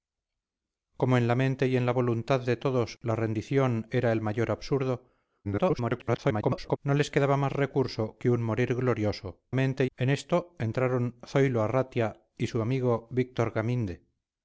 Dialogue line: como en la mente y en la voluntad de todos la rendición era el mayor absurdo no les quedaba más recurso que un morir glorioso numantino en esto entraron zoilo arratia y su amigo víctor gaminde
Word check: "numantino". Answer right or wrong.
wrong